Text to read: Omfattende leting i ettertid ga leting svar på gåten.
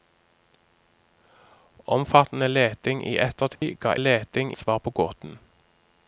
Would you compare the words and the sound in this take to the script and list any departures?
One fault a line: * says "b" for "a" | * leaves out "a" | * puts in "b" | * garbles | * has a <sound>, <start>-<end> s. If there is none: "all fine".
* has a dropout, 3.6-3.6 s